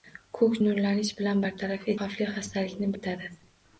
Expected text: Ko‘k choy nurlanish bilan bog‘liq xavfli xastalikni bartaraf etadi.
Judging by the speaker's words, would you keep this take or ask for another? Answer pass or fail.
fail